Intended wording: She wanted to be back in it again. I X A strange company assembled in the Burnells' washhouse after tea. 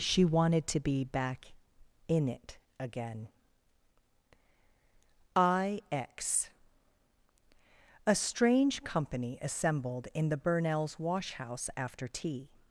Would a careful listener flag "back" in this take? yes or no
no